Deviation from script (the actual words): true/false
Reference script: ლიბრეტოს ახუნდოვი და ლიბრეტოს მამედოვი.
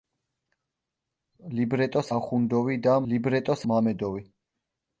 false